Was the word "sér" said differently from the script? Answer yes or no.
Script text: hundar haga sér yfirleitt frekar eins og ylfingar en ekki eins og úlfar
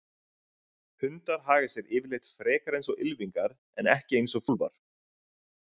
no